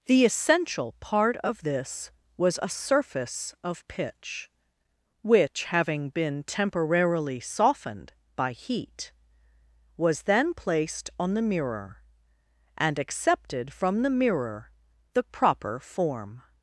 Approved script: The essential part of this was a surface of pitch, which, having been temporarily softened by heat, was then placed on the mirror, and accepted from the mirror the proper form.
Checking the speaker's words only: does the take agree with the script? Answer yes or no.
yes